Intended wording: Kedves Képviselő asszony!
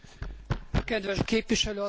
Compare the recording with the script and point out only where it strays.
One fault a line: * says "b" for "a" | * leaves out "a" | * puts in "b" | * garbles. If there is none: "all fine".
all fine